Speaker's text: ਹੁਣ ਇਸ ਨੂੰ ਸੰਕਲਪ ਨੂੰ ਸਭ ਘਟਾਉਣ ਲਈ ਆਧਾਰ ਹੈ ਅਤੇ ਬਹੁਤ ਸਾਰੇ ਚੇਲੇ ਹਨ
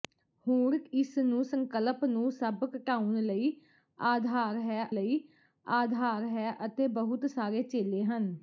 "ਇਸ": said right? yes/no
yes